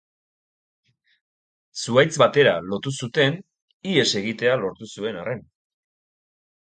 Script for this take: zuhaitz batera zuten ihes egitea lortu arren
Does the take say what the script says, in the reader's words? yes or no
no